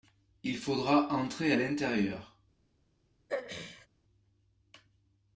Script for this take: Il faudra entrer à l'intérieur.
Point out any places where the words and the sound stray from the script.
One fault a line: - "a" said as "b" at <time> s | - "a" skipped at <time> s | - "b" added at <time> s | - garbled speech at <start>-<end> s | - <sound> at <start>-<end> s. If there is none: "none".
- throat clearing at 3.3-3.9 s